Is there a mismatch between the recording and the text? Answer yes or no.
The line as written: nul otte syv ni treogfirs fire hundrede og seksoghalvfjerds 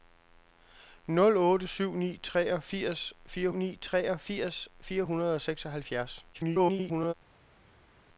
yes